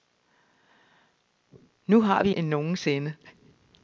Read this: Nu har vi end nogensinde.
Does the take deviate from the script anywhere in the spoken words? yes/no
no